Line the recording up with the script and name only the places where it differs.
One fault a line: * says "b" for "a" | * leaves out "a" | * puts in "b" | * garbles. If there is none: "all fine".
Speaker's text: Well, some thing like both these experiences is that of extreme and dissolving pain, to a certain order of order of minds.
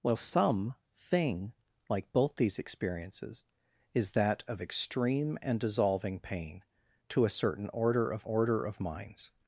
all fine